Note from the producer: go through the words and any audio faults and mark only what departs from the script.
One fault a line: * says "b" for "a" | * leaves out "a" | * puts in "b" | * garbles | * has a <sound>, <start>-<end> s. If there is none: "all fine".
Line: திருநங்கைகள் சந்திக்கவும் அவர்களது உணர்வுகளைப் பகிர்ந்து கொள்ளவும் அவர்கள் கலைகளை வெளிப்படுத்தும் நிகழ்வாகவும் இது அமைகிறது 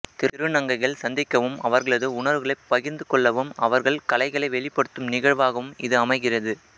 all fine